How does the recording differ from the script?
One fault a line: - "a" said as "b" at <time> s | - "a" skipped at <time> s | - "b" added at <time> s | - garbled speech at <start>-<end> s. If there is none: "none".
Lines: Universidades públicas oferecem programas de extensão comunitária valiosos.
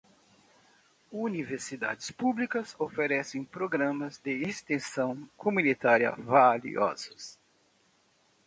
none